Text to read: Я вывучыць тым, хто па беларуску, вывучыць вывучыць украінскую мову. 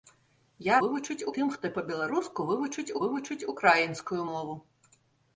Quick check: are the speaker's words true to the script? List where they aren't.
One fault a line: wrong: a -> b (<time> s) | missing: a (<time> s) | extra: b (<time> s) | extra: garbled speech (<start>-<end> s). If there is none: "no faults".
no faults